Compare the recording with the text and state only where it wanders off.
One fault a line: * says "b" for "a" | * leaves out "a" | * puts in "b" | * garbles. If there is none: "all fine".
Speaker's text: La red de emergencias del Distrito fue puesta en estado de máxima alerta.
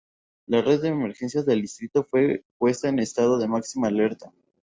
all fine